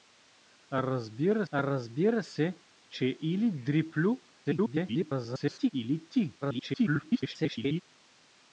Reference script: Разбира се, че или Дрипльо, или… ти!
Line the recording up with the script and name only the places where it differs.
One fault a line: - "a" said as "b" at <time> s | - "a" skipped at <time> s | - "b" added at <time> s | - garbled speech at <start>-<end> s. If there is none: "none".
- "разбира" added at 1.5 s
- garbled speech at 4.4-5.7 s
- garbled speech at 6.4-7.8 s